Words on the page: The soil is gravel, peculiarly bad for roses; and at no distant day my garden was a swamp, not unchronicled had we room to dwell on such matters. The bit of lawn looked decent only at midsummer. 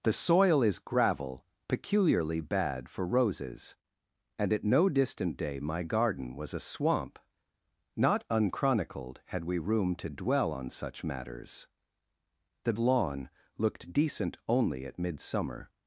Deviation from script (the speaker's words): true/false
true